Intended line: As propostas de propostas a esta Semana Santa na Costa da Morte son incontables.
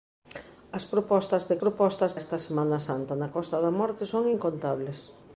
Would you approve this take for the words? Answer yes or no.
yes